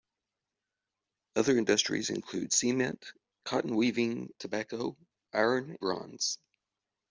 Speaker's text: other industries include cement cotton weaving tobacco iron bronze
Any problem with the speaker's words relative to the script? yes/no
no